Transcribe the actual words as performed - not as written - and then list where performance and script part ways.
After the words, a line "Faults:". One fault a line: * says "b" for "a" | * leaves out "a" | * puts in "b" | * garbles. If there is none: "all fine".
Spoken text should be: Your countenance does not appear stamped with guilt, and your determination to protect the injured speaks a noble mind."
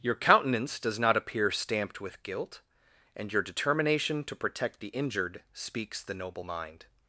Your countenance does not appear stamped with guilt, and your determination to protect the injured speaks the noble mind."
Faults:
* says "the" for "a"